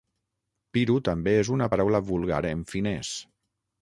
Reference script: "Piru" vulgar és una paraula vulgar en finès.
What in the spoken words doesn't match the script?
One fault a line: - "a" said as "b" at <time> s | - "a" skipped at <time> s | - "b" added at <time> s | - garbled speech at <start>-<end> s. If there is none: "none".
- "vulgar" said as "també" at 1.1 s